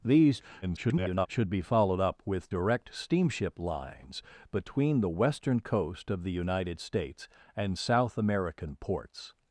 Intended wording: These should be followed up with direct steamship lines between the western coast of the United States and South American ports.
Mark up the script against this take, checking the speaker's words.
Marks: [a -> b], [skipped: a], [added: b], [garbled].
These [garbled] should be followed up with direct steamship lines between the western coast of the United States and South American ports.